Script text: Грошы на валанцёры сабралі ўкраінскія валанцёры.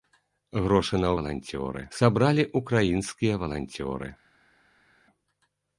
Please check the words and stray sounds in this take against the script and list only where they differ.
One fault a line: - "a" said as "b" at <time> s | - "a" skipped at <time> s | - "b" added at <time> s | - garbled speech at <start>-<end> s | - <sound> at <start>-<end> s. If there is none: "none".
none